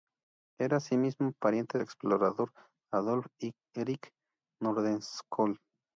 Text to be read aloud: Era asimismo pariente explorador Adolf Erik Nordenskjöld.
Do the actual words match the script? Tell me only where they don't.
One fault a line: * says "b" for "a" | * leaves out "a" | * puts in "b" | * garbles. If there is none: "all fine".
all fine